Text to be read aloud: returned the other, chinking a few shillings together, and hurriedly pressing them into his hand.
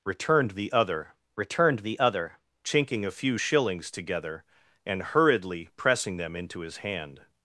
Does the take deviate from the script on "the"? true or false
false